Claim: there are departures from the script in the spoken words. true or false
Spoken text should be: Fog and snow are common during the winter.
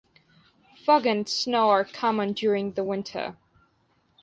false